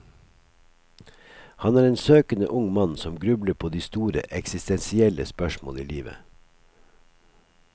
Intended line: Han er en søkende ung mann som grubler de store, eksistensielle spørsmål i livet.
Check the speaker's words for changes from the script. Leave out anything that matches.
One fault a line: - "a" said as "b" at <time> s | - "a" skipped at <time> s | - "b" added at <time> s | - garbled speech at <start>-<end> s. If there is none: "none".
- "på" added at 3.5 s